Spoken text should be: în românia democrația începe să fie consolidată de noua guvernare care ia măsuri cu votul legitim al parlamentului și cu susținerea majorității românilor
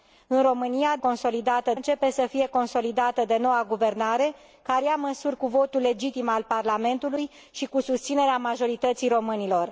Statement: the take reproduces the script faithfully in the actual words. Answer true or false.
false